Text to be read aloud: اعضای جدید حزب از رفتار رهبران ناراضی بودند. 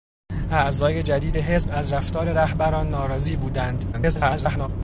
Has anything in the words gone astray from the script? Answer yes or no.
yes